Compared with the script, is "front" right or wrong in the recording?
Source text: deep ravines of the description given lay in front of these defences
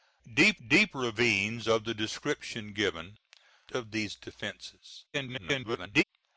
wrong